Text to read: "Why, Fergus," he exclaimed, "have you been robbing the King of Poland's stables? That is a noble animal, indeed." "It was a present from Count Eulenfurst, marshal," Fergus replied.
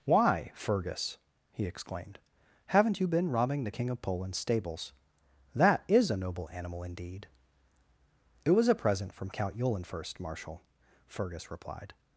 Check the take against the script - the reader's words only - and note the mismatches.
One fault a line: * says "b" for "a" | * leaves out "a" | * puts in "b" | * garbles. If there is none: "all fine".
* says "haven't" for "have"